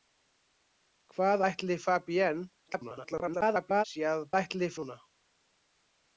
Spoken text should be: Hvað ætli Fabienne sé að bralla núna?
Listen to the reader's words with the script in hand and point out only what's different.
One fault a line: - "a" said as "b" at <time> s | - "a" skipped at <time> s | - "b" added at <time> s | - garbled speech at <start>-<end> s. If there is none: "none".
- garbled speech at 2.7-3.8 s
- "bralla" said as "ætli" at 4.4 s